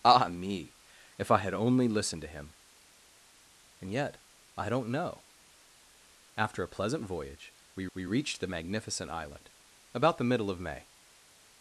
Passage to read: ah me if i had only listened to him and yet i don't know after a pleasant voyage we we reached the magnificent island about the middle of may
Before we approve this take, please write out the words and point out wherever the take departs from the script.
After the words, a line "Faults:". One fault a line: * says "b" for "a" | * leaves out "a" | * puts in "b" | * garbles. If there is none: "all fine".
ah me if i had only listened to him and yet i don't know after a pleasant voyage we we reached the magnificent island about the middle of may
Faults:
all fine